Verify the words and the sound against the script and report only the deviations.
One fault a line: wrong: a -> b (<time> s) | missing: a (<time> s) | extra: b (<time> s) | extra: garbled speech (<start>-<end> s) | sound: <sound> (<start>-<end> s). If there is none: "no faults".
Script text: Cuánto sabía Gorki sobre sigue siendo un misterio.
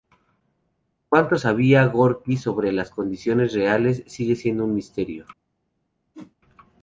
extra: las condiciones reales (2.7 s)
sound: whoosh (6.1-6.4 s)